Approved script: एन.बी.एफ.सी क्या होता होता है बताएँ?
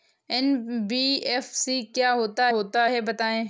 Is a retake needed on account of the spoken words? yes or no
no